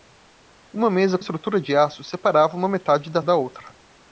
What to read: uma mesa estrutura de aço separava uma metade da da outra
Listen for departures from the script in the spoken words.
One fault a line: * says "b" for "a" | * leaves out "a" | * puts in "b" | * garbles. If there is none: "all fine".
all fine